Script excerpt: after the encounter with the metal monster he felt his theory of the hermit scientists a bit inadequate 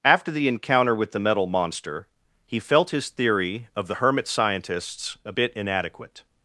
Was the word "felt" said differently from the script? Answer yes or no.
no